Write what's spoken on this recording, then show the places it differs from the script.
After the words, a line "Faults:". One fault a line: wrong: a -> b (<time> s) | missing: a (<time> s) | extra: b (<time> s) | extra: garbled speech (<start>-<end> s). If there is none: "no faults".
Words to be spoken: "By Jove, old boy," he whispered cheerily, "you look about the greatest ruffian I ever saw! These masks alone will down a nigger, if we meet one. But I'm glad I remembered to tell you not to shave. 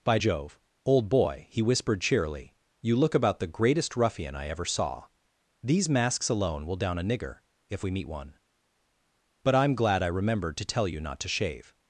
"By Jove, old boy," he whispered cheerily, "you look about the greatest ruffian I ever saw! These masks alone will down a nigger, if we meet one. But I'm glad I remembered to tell you not to shave.
Faults:
no faults